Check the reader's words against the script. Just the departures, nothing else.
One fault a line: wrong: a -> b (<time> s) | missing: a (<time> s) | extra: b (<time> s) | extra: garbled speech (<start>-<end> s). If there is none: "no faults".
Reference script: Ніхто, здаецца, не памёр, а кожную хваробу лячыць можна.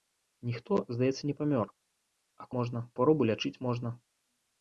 wrong: кожную -> можна (2.6 s)